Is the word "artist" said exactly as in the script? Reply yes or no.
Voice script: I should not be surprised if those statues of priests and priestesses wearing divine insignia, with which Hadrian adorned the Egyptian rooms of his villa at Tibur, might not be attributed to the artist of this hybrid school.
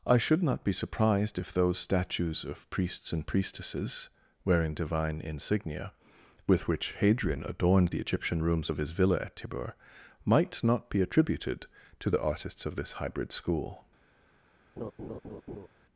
no